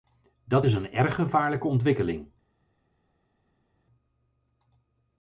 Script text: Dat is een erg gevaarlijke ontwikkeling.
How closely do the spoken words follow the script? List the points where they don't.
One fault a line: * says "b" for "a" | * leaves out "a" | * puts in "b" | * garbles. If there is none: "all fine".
all fine